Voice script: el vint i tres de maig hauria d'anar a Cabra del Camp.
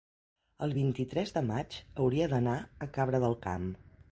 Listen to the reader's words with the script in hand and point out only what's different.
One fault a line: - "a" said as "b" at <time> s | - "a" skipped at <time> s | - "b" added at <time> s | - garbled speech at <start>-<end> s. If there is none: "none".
none